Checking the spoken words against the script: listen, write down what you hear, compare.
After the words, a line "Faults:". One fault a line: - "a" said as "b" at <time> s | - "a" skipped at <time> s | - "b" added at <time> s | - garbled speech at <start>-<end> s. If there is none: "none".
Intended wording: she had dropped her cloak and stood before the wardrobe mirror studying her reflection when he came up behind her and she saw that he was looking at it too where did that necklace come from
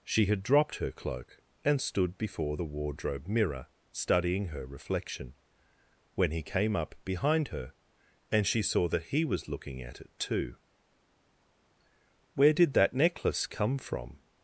she had dropped her cloak and stood before the wardrobe mirror studying her reflection when he came up behind her and she saw that he was looking at it too where did that necklace come from
Faults:
none